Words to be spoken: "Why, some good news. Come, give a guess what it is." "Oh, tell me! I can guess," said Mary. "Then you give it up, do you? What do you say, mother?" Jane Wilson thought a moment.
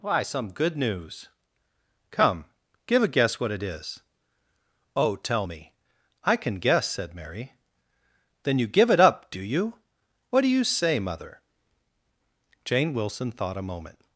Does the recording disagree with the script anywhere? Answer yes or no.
no